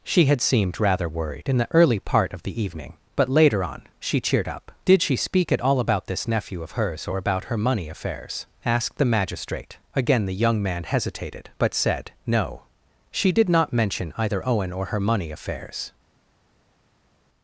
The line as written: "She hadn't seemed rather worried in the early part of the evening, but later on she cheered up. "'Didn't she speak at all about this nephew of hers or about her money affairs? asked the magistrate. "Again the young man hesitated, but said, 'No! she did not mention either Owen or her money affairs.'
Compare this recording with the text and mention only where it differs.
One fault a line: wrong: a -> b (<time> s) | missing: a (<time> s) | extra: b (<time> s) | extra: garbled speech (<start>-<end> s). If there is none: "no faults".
wrong: hadn't -> had (0.2 s)
wrong: Didn't -> Did (4.8 s)